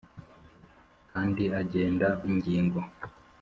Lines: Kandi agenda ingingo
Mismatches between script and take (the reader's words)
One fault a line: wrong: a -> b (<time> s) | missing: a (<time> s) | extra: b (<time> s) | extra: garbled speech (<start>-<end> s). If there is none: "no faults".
no faults